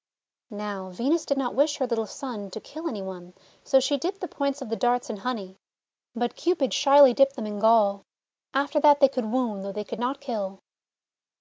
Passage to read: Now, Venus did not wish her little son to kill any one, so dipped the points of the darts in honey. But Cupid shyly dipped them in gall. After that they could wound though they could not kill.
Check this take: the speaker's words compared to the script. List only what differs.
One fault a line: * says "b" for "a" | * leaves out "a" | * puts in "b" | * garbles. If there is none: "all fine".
* puts in "she"